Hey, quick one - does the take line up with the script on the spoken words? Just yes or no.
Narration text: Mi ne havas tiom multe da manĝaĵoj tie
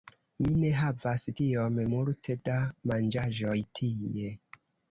yes